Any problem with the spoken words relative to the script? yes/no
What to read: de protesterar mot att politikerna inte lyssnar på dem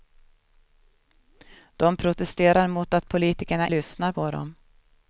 yes